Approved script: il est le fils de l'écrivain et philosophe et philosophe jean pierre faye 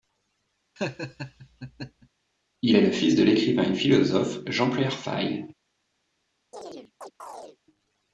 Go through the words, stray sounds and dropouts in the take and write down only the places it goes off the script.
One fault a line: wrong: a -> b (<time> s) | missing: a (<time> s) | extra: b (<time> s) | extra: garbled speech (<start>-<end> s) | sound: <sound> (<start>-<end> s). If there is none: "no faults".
sound: laugh (0.8-2.1 s)
missing: et philosophe (4.4 s)
sound: chirp (6.5-7.6 s)